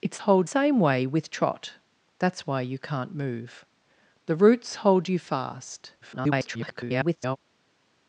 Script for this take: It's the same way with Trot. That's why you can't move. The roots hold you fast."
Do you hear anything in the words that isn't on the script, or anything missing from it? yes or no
yes